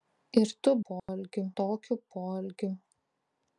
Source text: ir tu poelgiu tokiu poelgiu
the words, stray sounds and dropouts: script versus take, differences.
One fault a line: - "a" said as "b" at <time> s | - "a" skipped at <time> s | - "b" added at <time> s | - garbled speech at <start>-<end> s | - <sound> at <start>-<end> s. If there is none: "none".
- dropout at 1.0-1.1 s